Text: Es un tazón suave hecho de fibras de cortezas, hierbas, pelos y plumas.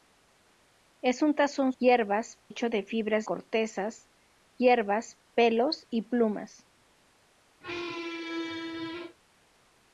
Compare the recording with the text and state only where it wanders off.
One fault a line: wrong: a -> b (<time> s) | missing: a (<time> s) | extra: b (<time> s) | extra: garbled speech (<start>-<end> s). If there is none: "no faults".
wrong: suave -> hierbas (1.8 s)
missing: de (3.3 s)